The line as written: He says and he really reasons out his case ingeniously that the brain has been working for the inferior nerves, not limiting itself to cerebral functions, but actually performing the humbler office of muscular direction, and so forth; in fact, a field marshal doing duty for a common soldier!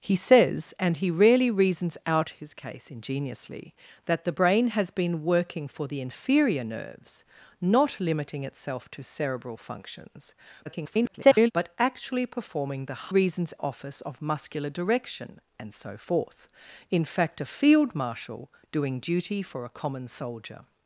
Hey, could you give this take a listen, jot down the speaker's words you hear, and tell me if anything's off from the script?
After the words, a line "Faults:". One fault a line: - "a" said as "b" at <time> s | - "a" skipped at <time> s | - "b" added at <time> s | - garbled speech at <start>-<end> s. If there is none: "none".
He says and he really reasons out his case ingeniously that the brain has been working for the inferior nerves, not limiting itself to cerebral functions, [garbled] but actually performing the reasons office of muscular direction, and so forth; in fact, a field marshal doing duty for a common soldier!
Faults:
- garbled speech at 10.7-11.5 s
- "humbler" said as "reasons" at 13.1 s